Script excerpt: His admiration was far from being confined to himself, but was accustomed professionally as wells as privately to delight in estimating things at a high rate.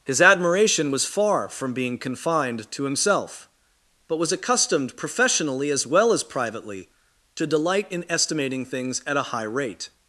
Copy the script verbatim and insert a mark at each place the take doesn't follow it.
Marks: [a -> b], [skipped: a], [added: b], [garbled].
His admiration was far from being confined to himself, but was accustomed professionally as [wells -> well] as privately to delight in estimating things at a high rate.